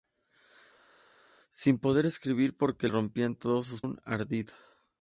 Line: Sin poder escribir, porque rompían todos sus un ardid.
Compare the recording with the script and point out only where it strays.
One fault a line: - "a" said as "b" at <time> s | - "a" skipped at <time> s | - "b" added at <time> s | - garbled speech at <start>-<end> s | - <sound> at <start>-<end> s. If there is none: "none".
none